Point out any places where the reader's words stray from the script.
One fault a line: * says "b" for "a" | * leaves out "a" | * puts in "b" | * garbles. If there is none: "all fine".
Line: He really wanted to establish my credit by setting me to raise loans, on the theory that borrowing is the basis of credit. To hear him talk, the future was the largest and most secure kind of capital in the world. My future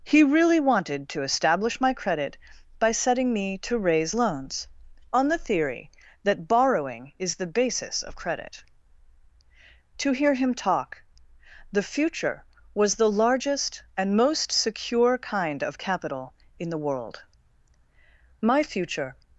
all fine